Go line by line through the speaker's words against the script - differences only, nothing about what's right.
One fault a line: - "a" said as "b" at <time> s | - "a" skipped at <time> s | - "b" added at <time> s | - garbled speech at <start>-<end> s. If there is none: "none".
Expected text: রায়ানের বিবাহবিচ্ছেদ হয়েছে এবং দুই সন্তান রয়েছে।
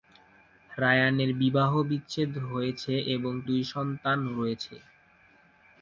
none